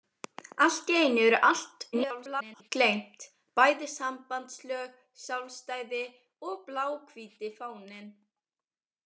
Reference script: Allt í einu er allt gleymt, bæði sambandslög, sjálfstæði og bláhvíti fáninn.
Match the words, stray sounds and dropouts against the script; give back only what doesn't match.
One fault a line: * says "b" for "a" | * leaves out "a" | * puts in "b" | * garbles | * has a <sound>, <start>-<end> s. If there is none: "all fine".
* garbles